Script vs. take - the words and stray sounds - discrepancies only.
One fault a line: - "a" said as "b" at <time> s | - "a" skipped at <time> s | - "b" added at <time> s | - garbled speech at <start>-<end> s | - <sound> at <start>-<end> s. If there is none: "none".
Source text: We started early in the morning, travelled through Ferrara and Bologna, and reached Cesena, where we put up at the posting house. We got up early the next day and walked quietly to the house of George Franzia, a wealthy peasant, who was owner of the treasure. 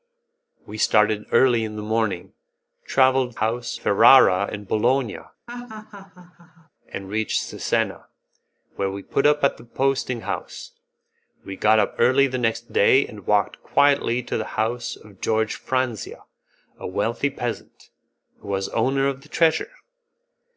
- "through" said as "house" at 3.4 s
- laugh at 5.5-6.7 s